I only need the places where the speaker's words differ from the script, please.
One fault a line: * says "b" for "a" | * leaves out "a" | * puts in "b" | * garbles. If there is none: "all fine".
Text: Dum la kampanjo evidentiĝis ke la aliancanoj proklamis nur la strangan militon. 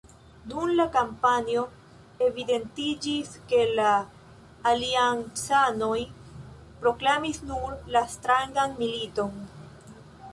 all fine